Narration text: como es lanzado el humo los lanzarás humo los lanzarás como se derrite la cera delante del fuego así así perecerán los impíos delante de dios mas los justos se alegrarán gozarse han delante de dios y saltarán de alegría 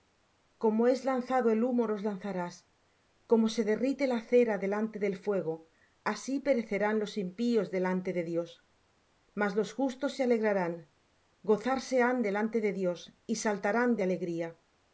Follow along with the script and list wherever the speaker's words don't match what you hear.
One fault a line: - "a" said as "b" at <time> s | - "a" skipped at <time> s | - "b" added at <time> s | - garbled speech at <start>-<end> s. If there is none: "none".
- "humo los lanzarás" skipped at 2.5 s
- "así" skipped at 6.4 s